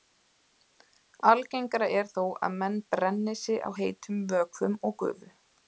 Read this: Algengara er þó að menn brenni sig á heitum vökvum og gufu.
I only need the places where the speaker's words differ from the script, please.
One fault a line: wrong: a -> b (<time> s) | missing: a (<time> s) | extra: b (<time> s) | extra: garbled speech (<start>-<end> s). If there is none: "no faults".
no faults